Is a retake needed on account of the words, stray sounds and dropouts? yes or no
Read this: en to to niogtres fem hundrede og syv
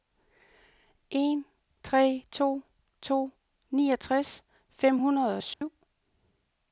yes